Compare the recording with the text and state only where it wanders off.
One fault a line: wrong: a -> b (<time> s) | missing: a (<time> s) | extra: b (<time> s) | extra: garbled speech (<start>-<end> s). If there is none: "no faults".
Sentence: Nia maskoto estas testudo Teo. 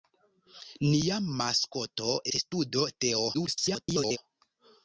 missing: estas (2.1 s)
extra: garbled speech (3.3-4.2 s)